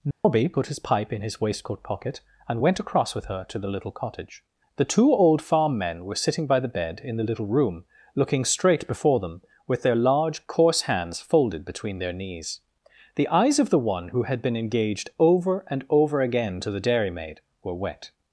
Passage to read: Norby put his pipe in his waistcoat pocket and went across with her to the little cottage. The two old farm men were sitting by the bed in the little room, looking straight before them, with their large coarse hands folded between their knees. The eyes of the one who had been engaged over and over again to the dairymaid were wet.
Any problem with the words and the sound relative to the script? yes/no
yes